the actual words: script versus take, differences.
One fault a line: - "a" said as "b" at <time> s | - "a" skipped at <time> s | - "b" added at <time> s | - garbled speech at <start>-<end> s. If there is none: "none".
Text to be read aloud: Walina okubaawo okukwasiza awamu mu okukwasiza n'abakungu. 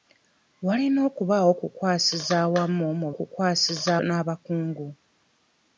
none